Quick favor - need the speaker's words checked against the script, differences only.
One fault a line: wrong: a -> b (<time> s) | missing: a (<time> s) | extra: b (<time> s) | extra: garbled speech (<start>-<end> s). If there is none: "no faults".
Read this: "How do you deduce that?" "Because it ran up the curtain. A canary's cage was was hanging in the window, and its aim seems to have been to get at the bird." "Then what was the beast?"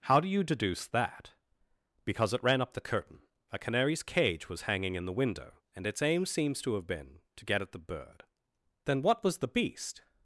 missing: was (4.6 s)